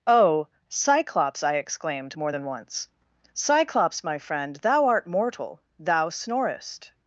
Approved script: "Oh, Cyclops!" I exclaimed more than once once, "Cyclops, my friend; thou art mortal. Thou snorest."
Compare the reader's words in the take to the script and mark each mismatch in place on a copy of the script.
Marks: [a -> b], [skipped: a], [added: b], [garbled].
"Oh, Cyclops!" I exclaimed more than once [skipped: once,] "Cyclops, my friend; thou art mortal. Thou snorest."